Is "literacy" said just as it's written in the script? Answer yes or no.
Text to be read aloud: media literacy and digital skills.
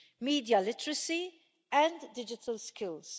yes